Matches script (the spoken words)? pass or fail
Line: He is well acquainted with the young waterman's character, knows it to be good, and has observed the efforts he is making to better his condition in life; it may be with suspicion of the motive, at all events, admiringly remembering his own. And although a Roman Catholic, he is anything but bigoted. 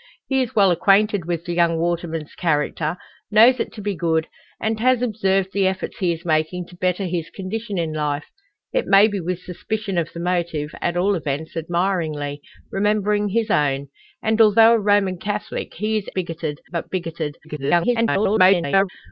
fail